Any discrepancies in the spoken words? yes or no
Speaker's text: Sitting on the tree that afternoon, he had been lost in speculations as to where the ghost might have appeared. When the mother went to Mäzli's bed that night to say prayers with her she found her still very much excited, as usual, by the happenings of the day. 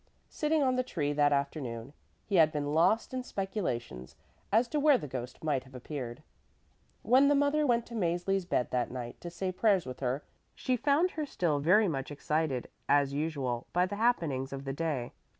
no